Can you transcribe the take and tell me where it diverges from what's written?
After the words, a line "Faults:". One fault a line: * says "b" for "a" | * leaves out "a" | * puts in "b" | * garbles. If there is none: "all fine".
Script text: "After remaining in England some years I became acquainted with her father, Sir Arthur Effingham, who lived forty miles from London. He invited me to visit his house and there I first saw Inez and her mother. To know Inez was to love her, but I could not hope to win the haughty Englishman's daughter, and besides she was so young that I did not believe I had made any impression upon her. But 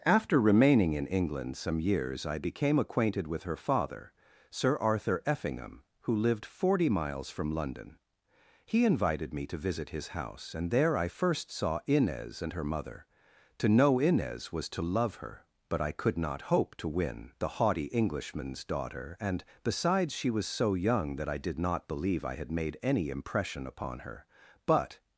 "After remaining in England some years I became acquainted with her father, Sir Arthur Effingham, who lived forty miles from London. He invited me to visit his house and there I first saw Inez and her mother. To know Inez was to love her, but I could not hope to win the haughty Englishman's daughter, and besides she was so young that I did not believe I had made any impression upon her. But
Faults:
all fine